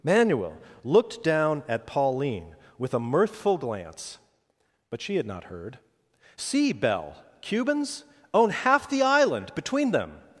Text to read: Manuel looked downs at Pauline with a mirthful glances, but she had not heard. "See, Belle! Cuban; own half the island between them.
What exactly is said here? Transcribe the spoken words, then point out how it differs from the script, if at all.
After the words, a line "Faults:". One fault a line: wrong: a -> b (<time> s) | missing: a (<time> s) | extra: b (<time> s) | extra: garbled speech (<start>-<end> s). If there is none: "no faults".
Manuel looked down at Pauline with a mirthful glance, but she had not heard. "See, Belle! Cubans; own half the island between them.
Faults:
wrong: downs -> down (1.2 s)
wrong: glances -> glance (3.6 s)
wrong: Cuban -> Cubans (7.4 s)